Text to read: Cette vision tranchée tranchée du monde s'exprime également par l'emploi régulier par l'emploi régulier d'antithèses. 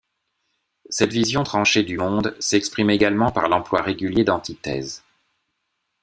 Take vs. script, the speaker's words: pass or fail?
fail